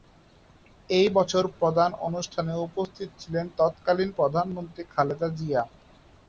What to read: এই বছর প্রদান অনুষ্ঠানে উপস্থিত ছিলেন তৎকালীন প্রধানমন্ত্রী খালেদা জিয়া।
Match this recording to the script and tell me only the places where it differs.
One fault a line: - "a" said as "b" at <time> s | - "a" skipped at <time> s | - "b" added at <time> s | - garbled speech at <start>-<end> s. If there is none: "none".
none